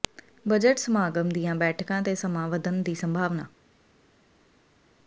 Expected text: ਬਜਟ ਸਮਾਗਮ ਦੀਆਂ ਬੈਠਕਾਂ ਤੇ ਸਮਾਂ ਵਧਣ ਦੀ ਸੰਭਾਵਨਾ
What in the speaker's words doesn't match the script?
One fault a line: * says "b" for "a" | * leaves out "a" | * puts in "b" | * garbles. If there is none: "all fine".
all fine